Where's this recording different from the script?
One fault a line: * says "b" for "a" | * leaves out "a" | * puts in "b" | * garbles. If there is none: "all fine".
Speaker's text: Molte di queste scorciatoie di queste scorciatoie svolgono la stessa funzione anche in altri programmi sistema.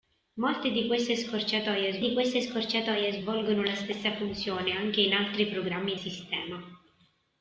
all fine